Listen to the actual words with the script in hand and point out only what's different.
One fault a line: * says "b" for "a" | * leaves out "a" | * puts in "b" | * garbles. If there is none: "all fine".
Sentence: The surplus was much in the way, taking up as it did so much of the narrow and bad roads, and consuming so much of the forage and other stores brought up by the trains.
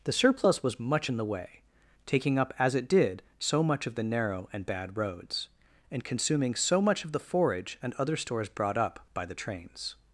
all fine